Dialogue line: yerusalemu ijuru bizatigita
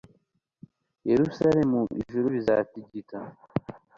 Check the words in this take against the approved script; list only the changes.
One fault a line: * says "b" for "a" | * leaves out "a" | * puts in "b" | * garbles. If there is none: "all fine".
all fine